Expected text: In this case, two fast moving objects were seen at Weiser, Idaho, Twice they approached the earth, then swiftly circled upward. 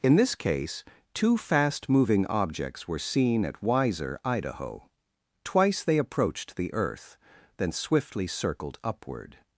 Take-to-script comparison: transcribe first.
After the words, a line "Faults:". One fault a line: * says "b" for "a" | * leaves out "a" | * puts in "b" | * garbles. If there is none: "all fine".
In this case, two fast moving objects were seen at Weiser, Idaho, Twice they approached the earth, then swiftly circled upward.
Faults:
all fine